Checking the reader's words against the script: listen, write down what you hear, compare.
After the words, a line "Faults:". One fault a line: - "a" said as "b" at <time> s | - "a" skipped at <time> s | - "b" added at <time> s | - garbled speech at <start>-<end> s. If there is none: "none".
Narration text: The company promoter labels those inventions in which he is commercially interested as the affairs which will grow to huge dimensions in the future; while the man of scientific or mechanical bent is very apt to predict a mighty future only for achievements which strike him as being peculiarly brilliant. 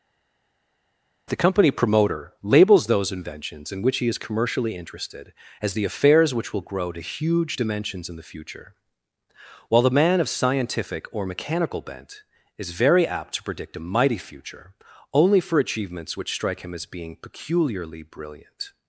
The company promoter labels those inventions in which he is commercially interested as the affairs which will grow to huge dimensions in the future; while the man of scientific or mechanical bent is very apt to predict a mighty future only for achievements which strike him as being peculiarly brilliant.
Faults:
none